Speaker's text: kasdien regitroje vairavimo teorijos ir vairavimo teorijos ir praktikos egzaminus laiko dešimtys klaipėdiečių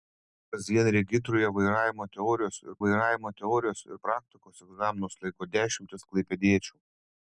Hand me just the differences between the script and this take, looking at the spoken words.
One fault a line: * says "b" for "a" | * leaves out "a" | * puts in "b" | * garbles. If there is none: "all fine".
all fine